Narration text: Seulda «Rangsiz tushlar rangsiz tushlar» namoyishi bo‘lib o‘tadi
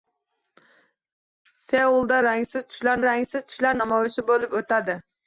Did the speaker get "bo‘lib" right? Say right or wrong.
right